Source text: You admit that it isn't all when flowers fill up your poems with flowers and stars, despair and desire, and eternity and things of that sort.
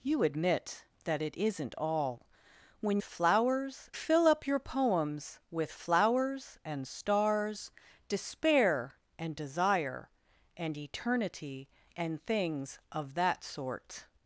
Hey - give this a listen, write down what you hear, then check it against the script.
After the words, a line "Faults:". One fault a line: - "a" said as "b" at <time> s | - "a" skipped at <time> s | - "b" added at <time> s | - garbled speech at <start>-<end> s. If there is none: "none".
You admit that it isn't all when flowers fill up your poems with flowers and stars, despair and desire, and eternity and things of that sort.
Faults:
none